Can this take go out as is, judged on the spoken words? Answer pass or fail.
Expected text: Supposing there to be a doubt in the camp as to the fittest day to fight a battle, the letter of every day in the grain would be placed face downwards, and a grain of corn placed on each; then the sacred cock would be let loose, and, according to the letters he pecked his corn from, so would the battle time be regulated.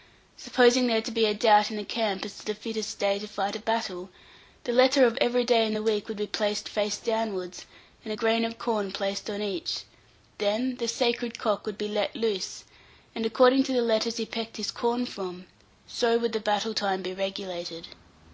fail